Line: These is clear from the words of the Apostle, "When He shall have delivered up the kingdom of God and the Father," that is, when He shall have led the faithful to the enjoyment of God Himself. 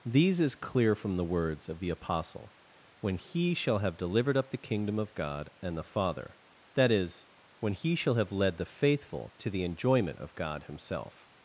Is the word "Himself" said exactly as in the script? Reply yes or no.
yes